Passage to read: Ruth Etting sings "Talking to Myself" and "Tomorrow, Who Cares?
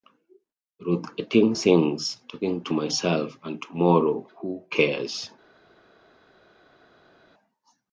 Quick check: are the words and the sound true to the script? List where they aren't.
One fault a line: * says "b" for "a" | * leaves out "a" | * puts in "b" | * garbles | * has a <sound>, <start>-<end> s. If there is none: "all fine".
all fine